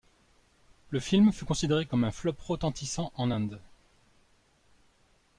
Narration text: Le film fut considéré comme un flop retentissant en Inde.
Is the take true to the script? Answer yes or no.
yes